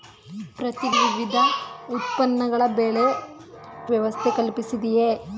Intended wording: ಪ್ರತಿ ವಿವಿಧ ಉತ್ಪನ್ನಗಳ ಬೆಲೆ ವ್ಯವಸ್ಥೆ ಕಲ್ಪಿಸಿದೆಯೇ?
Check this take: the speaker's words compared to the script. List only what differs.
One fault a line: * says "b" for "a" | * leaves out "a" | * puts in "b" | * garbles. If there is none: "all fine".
all fine